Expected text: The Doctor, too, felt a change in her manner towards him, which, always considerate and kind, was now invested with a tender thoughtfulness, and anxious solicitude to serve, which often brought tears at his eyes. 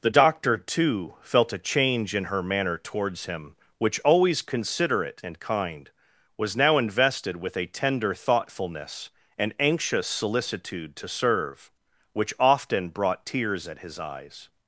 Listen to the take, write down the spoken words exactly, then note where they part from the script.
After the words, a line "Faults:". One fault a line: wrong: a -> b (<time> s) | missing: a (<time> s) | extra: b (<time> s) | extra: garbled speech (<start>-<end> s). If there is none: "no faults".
The Doctor, too, felt a change in her manner towards him, which, always considerate and kind, was now invested with a tender thoughtfulness, and anxious solicitude to serve, which often brought tears at his eyes.
Faults:
no faults